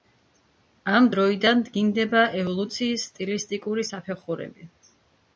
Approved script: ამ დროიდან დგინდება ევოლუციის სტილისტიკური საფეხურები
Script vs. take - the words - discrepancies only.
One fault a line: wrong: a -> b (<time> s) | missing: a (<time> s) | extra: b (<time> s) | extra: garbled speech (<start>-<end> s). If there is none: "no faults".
no faults